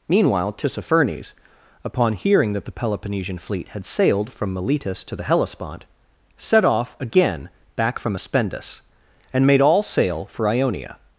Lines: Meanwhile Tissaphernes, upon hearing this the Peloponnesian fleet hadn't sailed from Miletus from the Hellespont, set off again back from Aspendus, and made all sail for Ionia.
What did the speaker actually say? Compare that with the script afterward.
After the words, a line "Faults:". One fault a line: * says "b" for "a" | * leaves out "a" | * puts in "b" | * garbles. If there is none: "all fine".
Meanwhile Tissaphernes, upon hearing that the Peloponnesian fleet had sailed from Miletus to the Hellespont, set off again back from Aspendus, and made all sail for Ionia.
Faults:
* says "that" for "this"
* says "had" for "hadn't"
* says "to" for "from"